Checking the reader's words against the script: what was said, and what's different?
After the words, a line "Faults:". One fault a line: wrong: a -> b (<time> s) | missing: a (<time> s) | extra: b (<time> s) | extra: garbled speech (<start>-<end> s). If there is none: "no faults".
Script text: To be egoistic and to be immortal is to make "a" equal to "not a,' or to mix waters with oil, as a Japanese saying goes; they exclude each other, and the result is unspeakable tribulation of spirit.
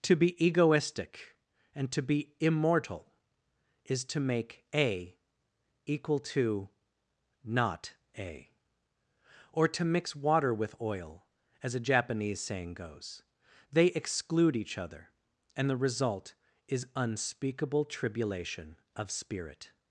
To be egoistic and to be immortal is to make "a" equal to "not a,' or to mix water with oil, as a Japanese saying goes; they exclude each other, and the result is unspeakable tribulation of spirit.
Faults:
wrong: waters -> water (10.2 s)